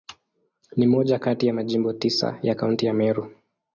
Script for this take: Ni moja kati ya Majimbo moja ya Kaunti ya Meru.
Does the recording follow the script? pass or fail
fail